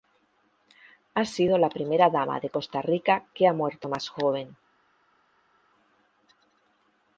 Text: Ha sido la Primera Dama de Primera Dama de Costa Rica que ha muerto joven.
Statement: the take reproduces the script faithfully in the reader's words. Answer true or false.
false